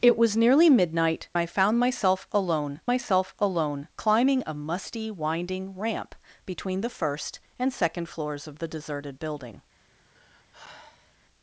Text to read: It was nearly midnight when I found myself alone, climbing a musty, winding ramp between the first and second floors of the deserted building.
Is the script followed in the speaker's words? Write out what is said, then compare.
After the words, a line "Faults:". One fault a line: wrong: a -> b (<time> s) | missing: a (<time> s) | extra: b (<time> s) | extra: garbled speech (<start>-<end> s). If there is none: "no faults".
It was nearly midnight I found myself alone myself alone, climbing a musty, winding ramp between the first and second floors of the deserted building.
Faults:
missing: when (1.3 s)
extra: myself alone (2.9 s)